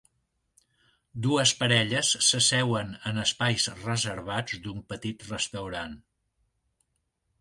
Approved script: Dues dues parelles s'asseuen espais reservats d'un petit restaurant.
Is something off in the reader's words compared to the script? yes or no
yes